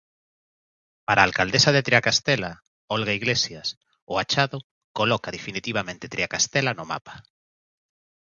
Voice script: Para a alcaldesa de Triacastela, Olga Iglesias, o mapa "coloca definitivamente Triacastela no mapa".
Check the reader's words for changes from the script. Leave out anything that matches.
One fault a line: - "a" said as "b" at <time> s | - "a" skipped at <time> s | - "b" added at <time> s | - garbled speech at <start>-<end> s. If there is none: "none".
- "mapa" said as "achado" at 4.2 s